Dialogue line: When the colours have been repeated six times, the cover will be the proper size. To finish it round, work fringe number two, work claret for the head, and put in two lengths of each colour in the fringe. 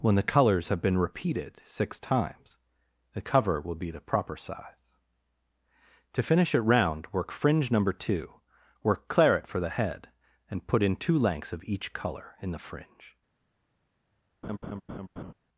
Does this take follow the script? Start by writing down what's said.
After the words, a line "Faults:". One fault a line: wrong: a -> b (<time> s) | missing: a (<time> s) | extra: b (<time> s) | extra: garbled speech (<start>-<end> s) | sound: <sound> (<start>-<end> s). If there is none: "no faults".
When the colours have been repeated six times, the cover will be the proper size. To finish it round, work fringe number two, work claret for the head, and put in two lengths of each colour in the fringe.
Faults:
sound: laugh (14.4-15.3 s)